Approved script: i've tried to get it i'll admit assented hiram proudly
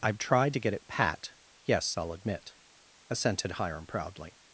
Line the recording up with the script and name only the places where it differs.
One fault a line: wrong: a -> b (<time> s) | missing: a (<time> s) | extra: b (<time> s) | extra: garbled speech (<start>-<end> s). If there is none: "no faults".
extra: pat yes (0.9 s)